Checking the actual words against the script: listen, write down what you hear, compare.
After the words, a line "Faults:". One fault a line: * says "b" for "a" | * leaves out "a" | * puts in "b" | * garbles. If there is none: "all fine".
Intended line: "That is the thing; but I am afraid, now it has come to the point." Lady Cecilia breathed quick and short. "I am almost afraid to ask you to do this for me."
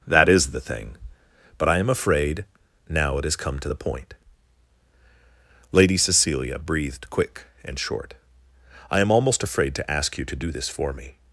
"That is the thing; but I am afraid, now it has come to the point." Lady Cecilia breathed quick and short. "I am almost afraid to ask you to do this for me."
Faults:
all fine